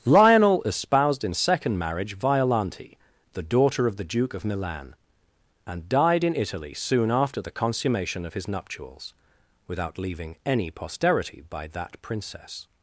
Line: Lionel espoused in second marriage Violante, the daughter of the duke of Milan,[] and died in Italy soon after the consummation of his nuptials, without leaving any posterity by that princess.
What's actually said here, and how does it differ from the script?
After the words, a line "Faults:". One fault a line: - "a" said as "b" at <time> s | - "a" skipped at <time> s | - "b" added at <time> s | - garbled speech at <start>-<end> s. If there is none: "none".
Lionel espoused in second marriage Violante, the daughter of the duke of Milan,[] and died in Italy soon after the consummation of his nuptials, without leaving any posterity by that princess.
Faults:
none